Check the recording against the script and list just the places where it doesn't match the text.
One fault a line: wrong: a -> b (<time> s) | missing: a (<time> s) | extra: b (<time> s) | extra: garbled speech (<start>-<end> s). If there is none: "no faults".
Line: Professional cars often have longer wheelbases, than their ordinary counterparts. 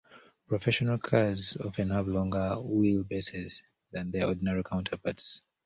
no faults